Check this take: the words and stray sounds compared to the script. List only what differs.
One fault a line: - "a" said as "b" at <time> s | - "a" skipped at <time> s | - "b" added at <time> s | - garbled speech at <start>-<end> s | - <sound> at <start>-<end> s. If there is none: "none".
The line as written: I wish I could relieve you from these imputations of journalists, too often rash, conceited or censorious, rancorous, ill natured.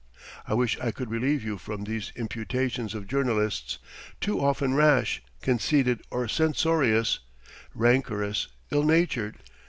none